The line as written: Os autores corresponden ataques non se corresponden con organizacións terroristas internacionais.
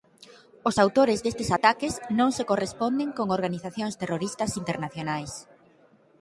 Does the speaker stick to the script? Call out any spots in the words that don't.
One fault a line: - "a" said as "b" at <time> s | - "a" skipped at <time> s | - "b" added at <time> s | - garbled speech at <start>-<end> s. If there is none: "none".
- "corresponden" said as "destes" at 1.2 s